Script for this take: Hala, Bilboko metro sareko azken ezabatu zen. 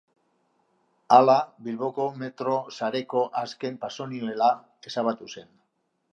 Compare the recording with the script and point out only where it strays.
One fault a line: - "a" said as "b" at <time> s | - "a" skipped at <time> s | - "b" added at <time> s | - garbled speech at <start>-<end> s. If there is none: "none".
- "pasonibela" added at 3.8 s